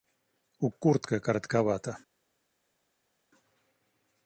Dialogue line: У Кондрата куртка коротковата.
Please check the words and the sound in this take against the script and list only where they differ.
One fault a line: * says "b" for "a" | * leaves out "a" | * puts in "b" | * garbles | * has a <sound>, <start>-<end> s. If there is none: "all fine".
* leaves out "Кондрата"